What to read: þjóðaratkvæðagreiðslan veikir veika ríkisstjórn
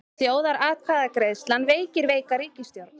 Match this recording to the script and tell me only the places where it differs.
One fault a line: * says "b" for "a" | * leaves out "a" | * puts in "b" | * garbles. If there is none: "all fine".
all fine